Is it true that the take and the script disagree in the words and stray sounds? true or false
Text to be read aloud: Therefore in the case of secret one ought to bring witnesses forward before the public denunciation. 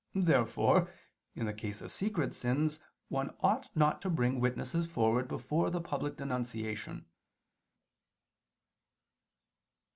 true